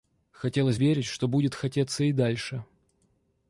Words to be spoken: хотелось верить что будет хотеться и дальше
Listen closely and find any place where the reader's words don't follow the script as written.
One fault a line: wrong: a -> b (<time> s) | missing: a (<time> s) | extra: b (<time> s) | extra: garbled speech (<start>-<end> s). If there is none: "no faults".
no faults